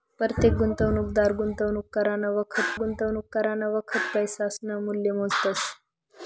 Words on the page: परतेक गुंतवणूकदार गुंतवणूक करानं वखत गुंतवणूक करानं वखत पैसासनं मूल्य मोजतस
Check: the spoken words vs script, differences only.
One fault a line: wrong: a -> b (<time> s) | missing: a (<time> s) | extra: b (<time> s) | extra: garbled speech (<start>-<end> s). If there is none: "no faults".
no faults